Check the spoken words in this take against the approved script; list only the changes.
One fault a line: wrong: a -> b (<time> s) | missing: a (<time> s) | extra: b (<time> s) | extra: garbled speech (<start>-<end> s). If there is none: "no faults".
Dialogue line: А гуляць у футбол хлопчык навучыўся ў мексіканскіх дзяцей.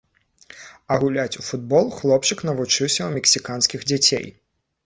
no faults